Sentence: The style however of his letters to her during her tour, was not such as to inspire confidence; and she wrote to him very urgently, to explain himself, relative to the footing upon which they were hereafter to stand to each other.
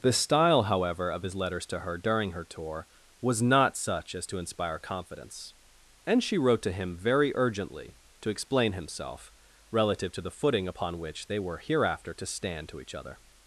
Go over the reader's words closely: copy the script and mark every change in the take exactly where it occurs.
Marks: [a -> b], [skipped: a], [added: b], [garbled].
The style however of his letters to her during her tour, was not such as to inspire confidence; and she wrote to him very urgently, to explain himself, relative to the footing upon which they were hereafter to stand to each other.